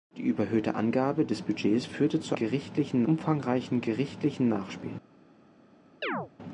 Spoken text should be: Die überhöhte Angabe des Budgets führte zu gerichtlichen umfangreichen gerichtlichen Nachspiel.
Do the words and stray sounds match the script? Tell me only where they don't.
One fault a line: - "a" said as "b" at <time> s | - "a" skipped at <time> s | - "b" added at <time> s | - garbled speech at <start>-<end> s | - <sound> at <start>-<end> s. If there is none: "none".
- chirp at 6.0-6.3 s